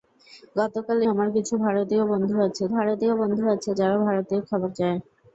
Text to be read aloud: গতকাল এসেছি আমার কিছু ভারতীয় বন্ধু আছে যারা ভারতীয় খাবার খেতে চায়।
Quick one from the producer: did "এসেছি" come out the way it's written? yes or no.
no